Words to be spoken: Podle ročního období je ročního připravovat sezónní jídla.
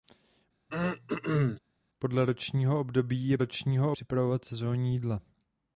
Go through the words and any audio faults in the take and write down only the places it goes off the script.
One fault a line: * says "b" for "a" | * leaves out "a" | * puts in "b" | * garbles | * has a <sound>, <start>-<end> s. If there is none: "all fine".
* has a throat clearing, 0.7-1.6 s